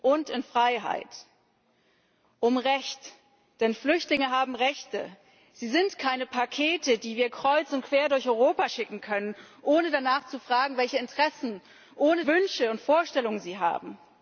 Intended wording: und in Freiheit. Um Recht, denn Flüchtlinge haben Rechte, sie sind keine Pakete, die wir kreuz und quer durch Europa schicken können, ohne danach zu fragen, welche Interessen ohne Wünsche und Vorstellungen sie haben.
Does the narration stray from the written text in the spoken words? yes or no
no